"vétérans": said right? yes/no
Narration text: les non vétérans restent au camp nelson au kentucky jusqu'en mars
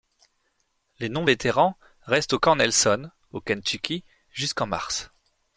yes